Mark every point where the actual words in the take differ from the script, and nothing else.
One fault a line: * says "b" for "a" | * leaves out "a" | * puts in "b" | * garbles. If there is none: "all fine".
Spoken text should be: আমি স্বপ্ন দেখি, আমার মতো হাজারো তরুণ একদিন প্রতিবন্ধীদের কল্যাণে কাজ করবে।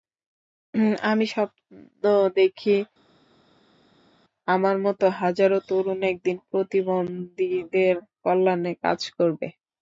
all fine